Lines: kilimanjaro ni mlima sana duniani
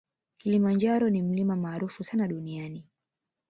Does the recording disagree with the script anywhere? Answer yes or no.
yes